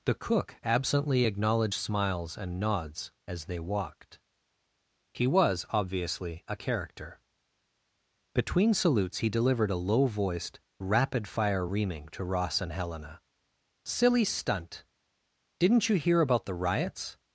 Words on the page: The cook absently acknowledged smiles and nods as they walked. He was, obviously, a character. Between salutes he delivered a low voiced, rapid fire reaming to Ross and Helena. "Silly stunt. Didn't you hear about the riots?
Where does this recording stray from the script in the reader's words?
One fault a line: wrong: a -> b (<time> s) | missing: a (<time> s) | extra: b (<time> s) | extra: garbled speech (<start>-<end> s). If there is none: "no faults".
no faults